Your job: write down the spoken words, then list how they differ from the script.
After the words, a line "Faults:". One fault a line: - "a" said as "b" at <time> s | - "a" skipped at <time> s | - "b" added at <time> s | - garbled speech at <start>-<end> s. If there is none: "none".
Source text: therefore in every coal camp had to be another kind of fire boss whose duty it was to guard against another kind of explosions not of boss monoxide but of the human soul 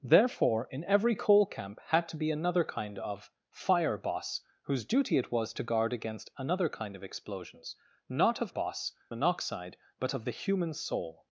therefore in every coal camp had to be another kind of fire boss whose duty it was to guard against another kind of explosions not of boss monoxide but of the human soul
Faults:
none